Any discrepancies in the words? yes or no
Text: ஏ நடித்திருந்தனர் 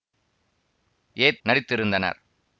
no